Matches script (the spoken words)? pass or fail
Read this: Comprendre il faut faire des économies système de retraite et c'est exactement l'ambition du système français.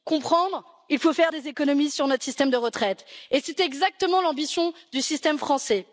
fail